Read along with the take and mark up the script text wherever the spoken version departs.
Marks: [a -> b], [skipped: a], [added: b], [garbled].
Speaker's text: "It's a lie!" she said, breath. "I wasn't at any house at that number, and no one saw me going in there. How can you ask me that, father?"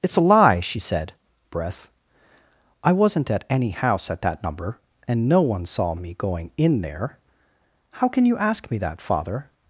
"It's a lie!" she said, breath. "I wasn't at any house at that number, and no one saw me going in there. How can you ask me that, father?"